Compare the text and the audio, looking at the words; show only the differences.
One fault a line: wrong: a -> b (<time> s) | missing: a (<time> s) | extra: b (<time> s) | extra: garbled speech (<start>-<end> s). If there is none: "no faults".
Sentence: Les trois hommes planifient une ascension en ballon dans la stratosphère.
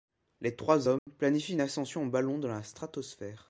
no faults